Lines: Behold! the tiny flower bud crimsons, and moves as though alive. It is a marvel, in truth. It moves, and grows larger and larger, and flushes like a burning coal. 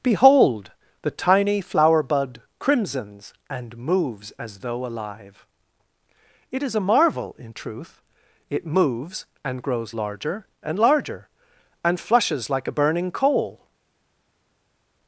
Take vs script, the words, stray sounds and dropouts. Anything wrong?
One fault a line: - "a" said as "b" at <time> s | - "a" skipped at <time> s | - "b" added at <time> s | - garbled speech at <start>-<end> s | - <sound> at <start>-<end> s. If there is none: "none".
none